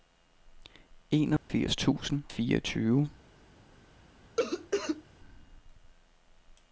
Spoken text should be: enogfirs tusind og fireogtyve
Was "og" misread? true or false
true